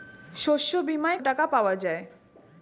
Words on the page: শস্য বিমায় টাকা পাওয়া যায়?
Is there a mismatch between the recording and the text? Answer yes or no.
no